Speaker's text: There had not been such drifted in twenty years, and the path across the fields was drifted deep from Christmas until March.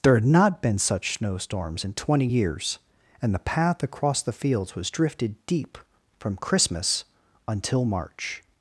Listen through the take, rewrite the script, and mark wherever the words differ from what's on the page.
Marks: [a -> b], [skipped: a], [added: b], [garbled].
There had not been such [drifted -> snowstorms] in twenty years, and the path across the fields was drifted deep from Christmas until March.